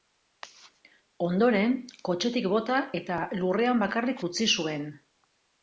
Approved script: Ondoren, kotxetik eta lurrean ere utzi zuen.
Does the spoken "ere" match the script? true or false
false